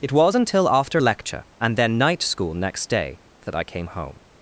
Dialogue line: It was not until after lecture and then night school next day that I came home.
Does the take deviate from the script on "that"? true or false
false